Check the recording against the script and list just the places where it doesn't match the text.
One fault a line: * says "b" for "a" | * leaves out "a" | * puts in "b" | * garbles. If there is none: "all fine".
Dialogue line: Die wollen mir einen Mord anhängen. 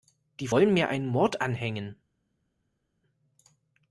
all fine